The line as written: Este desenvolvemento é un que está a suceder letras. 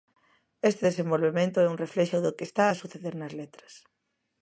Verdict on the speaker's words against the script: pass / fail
fail